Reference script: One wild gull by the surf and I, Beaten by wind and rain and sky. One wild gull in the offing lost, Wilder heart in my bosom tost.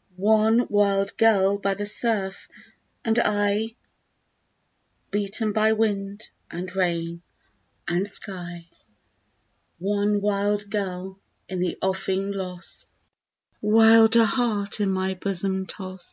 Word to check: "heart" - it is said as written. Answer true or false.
true